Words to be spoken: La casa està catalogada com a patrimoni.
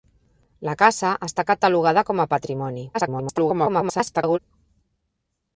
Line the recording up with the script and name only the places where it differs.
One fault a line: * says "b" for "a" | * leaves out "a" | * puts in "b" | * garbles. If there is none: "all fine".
* garbles